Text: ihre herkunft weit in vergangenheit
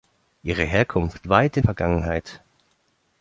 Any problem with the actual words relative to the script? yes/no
no